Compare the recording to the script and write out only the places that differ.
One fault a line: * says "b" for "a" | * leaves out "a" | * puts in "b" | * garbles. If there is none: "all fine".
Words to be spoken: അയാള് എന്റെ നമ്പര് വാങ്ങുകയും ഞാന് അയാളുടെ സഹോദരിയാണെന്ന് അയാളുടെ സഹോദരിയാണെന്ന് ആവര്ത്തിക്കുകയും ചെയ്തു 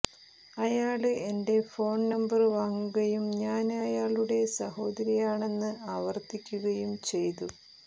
* puts in "ഫോണ്"
* leaves out "അയാളുടെ സഹോദരിയാണെന്ന്"